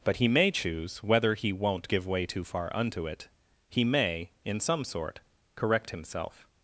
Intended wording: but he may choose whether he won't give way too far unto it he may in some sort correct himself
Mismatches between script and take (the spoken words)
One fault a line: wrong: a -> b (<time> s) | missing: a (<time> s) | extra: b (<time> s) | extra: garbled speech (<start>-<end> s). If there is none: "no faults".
no faults